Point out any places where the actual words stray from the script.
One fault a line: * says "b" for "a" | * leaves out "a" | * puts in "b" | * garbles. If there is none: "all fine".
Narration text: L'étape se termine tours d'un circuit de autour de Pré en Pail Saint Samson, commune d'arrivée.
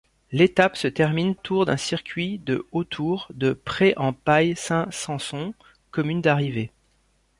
all fine